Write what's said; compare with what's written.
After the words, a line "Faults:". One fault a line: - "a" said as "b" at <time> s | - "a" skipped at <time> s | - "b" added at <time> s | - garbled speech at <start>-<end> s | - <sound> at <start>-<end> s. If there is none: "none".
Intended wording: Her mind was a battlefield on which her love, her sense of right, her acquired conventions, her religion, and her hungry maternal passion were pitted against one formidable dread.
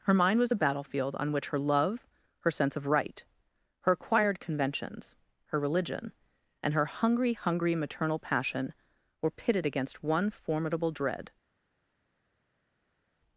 Her mind was a battlefield on which her love, her sense of right, her acquired conventions, her religion, and her hungry hungry maternal passion were pitted against one formidable dread.
Faults:
- "hungry" added at 7.3 s